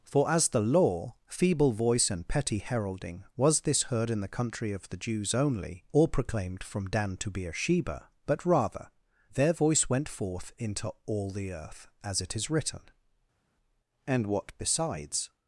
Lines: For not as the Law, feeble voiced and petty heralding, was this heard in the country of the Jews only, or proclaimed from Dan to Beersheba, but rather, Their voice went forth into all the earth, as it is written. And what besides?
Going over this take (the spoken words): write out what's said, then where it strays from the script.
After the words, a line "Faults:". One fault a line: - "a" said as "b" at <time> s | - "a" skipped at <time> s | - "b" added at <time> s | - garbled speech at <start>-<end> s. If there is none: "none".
For as the Law, feeble voice and petty heralding, was this heard in the country of the Jews only, or proclaimed from Dan to Beersheba, but rather, Their voice went forth into all the earth, as it is written. And what besides?
Faults:
- "not" skipped at 0.3 s
- "voiced" said as "voice" at 1.7 s